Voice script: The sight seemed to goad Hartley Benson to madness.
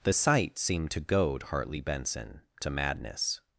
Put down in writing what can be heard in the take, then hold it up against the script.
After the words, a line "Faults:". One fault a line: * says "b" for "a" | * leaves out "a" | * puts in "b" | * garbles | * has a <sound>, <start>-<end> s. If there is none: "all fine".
The sight seemed to goad Hartley Benson to madness.
Faults:
all fine